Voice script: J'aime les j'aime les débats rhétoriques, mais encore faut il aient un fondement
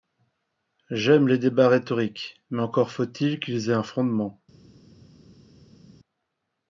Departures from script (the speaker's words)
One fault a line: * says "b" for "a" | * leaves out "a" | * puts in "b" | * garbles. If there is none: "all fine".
* leaves out "j'aime les"
* puts in "qu'ils"